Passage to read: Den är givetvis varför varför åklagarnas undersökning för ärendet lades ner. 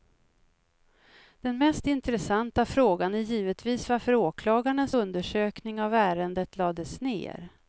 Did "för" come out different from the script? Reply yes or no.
yes